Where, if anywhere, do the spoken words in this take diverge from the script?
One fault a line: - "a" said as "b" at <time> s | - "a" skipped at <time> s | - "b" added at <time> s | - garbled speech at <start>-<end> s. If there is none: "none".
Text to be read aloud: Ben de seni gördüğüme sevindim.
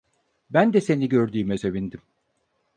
none